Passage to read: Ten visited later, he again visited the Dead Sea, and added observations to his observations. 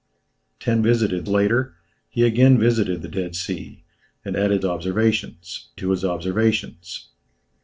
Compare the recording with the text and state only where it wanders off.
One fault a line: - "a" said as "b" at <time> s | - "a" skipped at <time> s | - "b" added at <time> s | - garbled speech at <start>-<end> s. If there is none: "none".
none